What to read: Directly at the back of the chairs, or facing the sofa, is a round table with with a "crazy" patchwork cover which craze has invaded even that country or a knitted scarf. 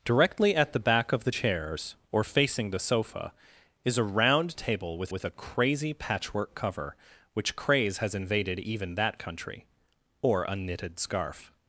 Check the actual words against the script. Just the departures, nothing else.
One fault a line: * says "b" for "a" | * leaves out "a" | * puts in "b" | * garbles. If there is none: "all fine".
all fine